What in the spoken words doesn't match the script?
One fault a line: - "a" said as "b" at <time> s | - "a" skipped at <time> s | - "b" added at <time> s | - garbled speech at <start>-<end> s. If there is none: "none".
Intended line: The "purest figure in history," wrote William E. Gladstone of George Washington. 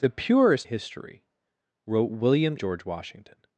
- "figure in" skipped at 0.7 s
- "E Gladstone of" skipped at 2.6 s